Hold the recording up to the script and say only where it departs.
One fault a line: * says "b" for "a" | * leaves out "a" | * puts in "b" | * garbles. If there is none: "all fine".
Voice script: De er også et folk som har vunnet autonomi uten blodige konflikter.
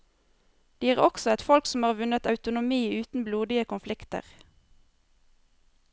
all fine